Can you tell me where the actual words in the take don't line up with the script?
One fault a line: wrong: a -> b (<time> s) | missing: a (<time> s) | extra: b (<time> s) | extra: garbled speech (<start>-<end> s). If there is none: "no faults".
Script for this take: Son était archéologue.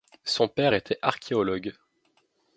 extra: père (0.5 s)